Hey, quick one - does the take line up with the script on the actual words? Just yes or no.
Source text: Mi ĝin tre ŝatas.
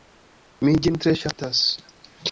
yes